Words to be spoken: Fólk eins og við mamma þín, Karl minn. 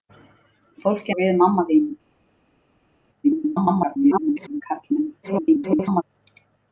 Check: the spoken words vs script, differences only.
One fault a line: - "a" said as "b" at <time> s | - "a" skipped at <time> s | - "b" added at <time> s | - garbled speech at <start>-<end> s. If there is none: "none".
- "eins" skipped at 1.1 s
- garbled speech at 3.2-4.6 s
- garbled speech at 5.2-6.0 s